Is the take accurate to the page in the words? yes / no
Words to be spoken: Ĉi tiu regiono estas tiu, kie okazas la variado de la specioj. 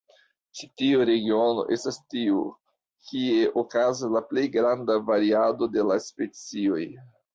no